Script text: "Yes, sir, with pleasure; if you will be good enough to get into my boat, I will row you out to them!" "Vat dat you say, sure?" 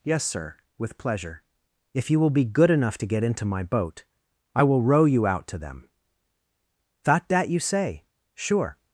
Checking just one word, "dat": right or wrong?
wrong